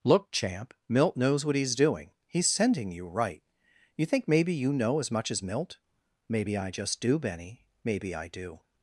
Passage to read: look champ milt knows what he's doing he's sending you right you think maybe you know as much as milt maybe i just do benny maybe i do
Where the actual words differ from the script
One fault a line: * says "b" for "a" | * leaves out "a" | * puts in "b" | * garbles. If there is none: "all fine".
all fine